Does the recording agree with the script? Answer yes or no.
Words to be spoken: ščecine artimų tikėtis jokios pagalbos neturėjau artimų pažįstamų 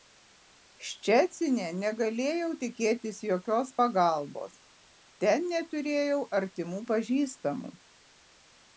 no